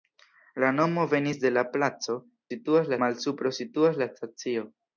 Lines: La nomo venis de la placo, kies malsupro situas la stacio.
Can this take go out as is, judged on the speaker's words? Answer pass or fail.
fail